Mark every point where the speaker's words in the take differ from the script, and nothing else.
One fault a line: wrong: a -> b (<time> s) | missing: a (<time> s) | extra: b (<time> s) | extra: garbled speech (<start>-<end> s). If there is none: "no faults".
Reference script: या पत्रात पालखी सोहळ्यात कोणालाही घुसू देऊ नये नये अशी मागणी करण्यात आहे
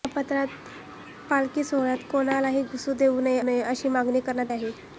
no faults